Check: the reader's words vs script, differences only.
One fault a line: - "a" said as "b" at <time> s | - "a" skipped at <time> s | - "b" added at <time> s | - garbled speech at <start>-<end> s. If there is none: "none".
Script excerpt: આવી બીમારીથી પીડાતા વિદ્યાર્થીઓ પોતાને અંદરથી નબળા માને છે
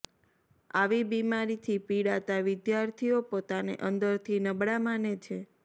none